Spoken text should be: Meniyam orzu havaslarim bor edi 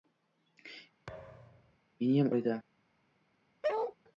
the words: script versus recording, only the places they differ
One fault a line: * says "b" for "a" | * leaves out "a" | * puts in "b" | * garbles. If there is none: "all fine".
* leaves out "orzu havaslarim"